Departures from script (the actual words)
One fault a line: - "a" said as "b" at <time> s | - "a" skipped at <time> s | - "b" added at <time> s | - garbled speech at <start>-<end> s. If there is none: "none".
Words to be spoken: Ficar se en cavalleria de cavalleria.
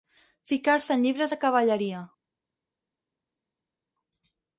- "cavalleria" said as "llibres" at 1.0 s